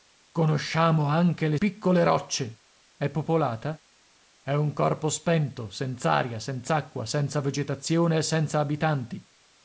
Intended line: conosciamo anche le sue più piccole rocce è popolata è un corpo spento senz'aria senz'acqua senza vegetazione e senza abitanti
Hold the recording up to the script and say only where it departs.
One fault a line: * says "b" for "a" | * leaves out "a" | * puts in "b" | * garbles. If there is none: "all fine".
* leaves out "sue più"